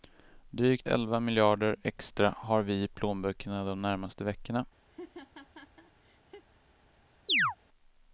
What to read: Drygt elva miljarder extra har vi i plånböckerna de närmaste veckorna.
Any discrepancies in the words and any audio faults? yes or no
yes